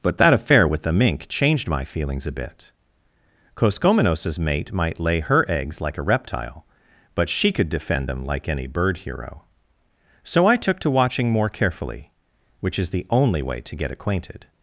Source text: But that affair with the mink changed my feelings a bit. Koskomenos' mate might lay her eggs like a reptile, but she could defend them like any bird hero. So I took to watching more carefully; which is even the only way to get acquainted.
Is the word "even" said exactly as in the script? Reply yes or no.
no